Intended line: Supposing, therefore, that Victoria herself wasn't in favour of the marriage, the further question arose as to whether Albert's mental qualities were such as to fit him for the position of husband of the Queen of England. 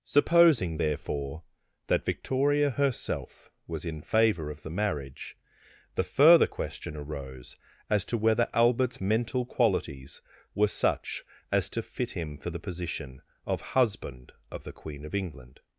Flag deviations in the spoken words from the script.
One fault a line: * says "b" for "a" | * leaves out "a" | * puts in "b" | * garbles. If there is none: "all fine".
* says "was" for "wasn't"